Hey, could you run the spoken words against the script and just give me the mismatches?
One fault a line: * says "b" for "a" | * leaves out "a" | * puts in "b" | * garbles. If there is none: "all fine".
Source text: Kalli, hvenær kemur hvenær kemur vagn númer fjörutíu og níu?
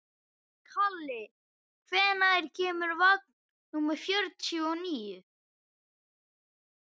* leaves out "hvenær kemur"